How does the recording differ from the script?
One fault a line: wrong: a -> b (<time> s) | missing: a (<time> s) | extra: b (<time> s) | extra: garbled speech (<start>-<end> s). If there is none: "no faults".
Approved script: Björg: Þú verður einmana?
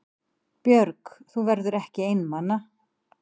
extra: ekki (1.8 s)